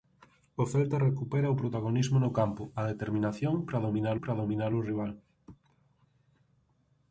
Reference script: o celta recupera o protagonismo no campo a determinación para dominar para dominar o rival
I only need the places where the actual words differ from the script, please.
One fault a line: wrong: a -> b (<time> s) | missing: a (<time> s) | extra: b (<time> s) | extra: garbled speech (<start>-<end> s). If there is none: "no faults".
no faults